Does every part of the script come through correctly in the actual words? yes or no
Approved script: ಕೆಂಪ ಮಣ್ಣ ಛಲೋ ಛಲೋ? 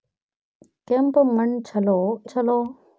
yes